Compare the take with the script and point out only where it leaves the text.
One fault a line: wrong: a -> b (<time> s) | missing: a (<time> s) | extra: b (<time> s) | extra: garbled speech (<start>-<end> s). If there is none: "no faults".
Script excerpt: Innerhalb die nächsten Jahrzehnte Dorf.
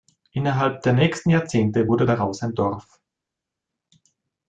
wrong: die -> der (0.8 s)
extra: wurde daraus ein (1.9 s)